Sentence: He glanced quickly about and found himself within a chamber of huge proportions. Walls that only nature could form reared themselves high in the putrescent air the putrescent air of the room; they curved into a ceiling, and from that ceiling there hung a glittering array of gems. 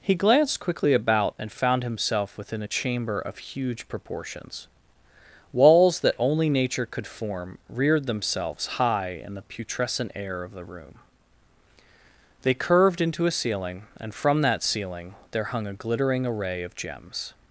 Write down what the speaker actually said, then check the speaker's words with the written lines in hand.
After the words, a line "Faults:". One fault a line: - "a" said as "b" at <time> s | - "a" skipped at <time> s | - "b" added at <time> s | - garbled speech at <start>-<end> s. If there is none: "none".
He glanced quickly about and found himself within a chamber of huge proportions. Walls that only nature could form reared themselves high in the putrescent air of the room; they curved into a ceiling, and from that ceiling there hung a glittering array of gems.
Faults:
- "the putrescent air" skipped at 10.4 s